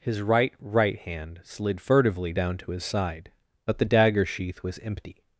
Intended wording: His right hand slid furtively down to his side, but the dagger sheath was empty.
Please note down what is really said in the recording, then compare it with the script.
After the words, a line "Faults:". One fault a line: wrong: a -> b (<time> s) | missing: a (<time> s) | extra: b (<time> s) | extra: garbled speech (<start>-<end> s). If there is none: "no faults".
His right right hand slid furtively down to his side, but the dagger sheath was empty.
Faults:
extra: right (0.6 s)